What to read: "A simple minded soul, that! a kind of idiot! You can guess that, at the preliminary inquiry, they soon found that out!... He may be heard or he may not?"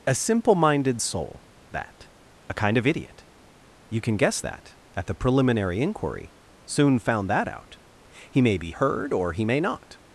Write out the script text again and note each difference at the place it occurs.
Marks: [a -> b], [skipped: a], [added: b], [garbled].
"A simple minded soul, that! a kind of idiot! You can guess that, at the preliminary inquiry, [skipped: they] soon found that out!... He may be heard or he may not?"